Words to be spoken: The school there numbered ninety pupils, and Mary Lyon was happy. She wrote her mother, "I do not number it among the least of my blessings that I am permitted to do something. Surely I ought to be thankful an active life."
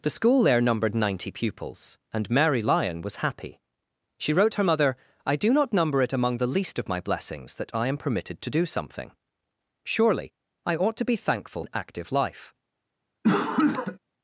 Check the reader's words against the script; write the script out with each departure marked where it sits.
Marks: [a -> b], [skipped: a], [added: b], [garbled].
The school there numbered ninety pupils, and Mary Lyon was happy. She wrote her mother, "I do not number it among the least of my blessings that I am permitted to do something. Surely I ought to be thankful an active life."